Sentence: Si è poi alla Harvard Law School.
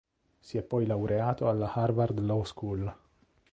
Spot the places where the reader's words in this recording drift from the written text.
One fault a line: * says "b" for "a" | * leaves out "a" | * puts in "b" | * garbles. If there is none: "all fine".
* puts in "laureato"